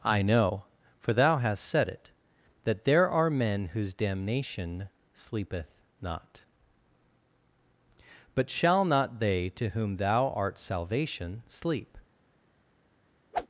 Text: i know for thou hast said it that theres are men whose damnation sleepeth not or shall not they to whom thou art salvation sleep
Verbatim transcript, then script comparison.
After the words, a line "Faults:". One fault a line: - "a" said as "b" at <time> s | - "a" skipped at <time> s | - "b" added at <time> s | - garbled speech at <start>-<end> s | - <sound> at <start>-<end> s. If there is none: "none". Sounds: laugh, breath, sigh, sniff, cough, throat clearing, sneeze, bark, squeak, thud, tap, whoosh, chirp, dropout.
i know for thou hast said it that there are men whose damnation sleepeth not but shall not they to whom thou art salvation sleep
Faults:
- "theres" said as "there" at 2.9 s
- "or" said as "but" at 8.3 s
- whoosh at 13.3-13.5 s